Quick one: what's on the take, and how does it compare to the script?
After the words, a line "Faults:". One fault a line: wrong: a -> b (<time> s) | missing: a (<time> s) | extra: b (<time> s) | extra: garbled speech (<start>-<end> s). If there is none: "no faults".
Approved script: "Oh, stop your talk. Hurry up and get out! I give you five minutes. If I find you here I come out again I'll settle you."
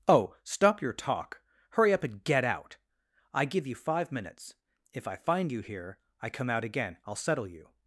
"Oh, stop your talk. Hurry up and get out! I give you five minutes. If I find you here I come out again I'll settle you."
Faults:
no faults